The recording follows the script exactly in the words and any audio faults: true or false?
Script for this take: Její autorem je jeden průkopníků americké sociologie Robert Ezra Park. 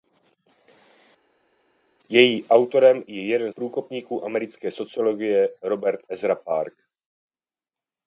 true